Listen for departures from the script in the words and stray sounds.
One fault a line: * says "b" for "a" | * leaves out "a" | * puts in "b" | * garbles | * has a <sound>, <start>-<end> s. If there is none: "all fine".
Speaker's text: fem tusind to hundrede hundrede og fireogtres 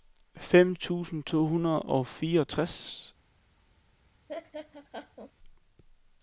* leaves out "hundrede"
* has a laugh, 4.3-5.3 s